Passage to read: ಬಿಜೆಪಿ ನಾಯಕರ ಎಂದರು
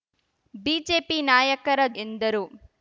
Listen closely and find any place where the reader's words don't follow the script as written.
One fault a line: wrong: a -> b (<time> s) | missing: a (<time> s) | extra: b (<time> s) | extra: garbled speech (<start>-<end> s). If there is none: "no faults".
no faults